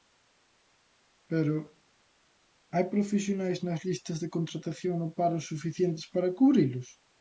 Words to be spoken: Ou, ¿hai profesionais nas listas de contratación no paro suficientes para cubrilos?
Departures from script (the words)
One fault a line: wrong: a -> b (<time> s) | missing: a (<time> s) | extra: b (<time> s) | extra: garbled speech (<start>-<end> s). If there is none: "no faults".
wrong: Ou -> Pero (1.3 s)